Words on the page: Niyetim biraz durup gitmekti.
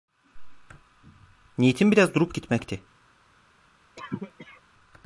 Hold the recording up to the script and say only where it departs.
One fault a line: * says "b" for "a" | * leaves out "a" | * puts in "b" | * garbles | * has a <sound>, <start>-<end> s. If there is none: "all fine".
* has a cough, 4.0-4.6 s